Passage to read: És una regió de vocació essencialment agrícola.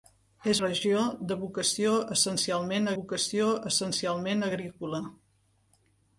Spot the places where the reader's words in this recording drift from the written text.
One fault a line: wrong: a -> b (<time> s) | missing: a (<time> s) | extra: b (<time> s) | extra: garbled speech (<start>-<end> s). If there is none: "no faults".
missing: una (0.6 s)
extra: vocació essencialment (3.0 s)